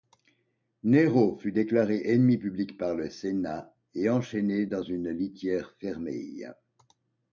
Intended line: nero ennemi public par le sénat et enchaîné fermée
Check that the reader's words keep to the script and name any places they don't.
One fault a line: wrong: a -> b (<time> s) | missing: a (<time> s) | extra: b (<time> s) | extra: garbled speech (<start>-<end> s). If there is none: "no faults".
extra: fut déclaré (1.4 s)
extra: dans une litière (4.6 s)